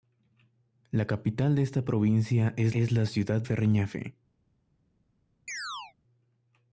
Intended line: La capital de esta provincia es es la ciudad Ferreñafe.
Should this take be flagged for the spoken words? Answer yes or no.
no